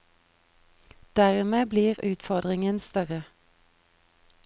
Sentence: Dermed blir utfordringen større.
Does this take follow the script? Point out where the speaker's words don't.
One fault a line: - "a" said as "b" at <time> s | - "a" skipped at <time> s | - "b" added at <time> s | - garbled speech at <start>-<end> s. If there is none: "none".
none